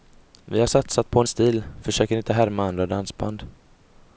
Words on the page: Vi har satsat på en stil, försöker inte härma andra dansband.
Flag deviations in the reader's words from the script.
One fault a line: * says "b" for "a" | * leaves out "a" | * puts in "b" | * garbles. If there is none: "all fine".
all fine